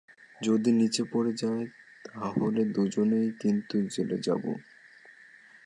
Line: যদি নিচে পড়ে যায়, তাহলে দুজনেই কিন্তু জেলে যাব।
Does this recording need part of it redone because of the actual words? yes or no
no